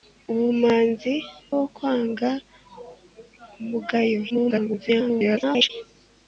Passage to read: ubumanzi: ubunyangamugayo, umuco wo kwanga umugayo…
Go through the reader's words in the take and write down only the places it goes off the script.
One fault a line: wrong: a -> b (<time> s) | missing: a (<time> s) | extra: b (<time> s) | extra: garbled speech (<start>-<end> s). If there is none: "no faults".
missing: ubunyangamugayo umuco (1.1 s)
extra: garbled speech (4.3-5.7 s)